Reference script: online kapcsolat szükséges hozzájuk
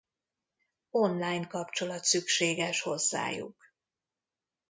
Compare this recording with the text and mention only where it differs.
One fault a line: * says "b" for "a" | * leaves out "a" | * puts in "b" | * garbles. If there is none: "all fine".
all fine